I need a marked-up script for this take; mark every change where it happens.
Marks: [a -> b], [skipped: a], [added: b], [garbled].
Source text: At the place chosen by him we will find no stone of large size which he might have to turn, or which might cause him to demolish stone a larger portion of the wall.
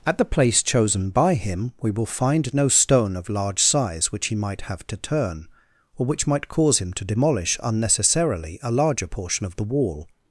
At the place chosen by him we will find no stone of large size which he might have to turn, or which might cause him to demolish [stone -> unnecessarily] a larger portion of the wall.